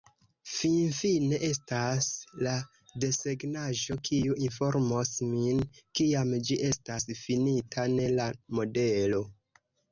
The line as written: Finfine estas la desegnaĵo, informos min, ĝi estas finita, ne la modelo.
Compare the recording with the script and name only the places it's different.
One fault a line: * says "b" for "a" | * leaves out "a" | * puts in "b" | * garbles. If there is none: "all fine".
* puts in "kiu"
* puts in "kiam"